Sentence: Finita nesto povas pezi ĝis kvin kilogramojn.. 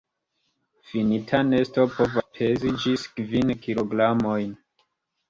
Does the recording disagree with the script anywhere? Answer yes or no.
no